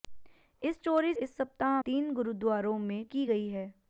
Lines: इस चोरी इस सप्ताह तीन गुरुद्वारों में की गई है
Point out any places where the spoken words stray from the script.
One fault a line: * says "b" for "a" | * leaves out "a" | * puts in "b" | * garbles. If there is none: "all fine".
all fine